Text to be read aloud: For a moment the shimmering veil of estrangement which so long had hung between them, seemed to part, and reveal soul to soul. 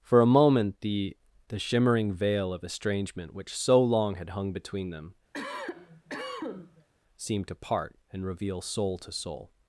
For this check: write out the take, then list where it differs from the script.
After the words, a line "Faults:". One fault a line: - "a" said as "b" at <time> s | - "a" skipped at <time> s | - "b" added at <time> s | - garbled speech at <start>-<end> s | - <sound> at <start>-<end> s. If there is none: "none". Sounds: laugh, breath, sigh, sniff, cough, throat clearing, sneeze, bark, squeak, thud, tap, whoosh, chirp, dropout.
For a moment the the shimmering veil of estrangement which so long had hung between them, seemed to part, and reveal soul to soul.
Faults:
- "the" added at 1.5 s
- cough at 5.3-6.9 s